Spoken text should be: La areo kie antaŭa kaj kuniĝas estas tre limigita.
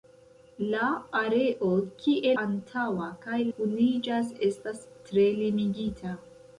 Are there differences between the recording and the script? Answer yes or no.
no